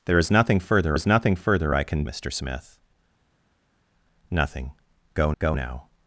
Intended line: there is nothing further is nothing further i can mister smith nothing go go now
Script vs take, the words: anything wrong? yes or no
no